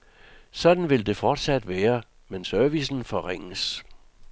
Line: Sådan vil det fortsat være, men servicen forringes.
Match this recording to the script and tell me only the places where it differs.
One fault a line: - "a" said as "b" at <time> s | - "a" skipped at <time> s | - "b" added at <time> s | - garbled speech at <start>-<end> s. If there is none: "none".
none